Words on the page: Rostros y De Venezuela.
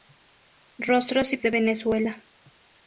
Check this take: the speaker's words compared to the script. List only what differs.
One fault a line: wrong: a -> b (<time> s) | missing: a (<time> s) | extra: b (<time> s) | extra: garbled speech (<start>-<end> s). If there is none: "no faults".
no faults